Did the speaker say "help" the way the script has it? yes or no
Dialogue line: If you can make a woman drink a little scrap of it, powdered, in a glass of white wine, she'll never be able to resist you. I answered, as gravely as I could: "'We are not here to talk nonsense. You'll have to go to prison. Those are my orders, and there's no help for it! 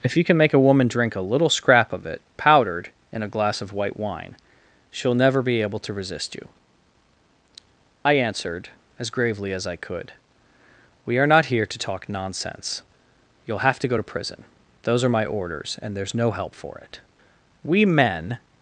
yes